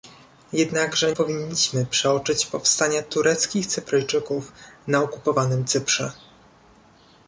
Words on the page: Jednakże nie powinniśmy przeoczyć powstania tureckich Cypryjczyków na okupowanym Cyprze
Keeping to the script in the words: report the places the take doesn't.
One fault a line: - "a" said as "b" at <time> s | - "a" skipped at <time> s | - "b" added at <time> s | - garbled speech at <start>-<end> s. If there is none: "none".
- "nie" skipped at 1.1 s